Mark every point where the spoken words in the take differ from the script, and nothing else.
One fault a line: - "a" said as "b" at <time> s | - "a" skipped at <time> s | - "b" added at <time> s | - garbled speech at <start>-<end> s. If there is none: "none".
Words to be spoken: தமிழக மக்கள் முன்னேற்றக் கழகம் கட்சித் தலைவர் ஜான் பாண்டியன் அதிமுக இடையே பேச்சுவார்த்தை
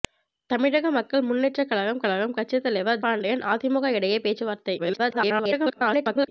- "கழகம்" added at 2.0 s
- "ஜான்" skipped at 3.0 s
- garbled speech at 4.8-6.3 s